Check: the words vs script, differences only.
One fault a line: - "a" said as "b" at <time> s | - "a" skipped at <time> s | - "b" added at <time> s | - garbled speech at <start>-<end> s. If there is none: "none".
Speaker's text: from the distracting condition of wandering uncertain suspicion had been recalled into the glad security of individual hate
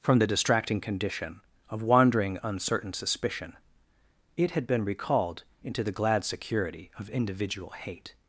- "it" added at 4.3 s